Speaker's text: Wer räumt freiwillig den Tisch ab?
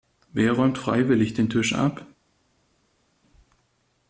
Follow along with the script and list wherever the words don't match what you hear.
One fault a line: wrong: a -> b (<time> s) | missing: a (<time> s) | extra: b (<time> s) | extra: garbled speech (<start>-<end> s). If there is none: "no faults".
no faults